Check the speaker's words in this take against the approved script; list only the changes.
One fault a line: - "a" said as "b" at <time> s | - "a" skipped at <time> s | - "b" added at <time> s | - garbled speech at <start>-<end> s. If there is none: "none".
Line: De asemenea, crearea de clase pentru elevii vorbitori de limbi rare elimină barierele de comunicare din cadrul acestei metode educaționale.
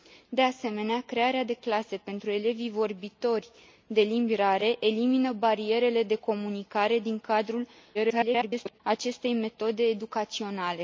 - garbled speech at 7.9-8.8 s